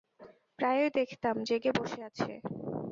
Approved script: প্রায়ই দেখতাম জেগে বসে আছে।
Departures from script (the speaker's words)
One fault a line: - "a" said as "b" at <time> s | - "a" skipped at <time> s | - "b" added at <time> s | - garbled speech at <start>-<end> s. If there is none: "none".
none